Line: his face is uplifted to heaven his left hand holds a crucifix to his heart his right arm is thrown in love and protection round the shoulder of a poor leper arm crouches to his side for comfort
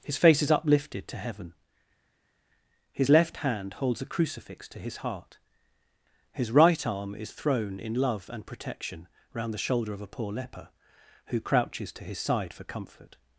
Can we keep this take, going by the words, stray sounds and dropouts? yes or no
no